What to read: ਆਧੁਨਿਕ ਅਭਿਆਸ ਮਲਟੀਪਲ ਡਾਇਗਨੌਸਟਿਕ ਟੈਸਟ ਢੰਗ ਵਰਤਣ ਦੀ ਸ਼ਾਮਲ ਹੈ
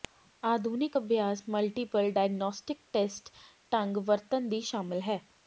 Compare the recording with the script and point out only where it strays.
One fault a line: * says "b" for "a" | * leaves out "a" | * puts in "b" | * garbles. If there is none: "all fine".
all fine